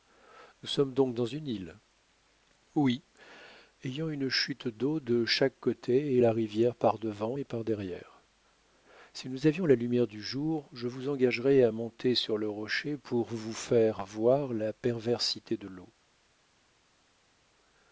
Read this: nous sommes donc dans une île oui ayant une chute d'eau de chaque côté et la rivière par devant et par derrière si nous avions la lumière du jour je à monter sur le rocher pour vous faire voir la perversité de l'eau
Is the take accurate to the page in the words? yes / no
no